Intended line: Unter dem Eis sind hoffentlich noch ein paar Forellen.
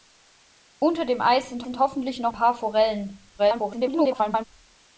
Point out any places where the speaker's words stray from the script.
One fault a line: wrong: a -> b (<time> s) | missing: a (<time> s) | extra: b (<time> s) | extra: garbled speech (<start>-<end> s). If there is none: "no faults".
extra: sind (1.6 s)
missing: ein (2.3 s)
extra: garbled speech (3.4-4.5 s)